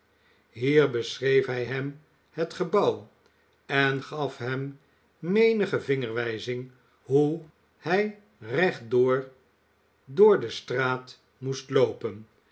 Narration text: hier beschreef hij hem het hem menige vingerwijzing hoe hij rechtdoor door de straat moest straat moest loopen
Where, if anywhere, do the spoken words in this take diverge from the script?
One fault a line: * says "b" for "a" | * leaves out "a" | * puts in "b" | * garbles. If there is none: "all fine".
* puts in "gebouw en gaf"
* leaves out "straat moest"